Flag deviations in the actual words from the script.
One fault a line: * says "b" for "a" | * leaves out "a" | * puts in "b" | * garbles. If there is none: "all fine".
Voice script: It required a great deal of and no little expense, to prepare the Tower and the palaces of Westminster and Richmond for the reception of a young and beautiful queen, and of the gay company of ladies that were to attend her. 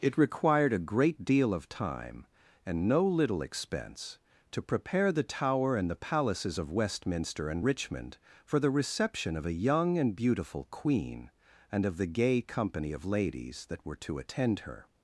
* puts in "time"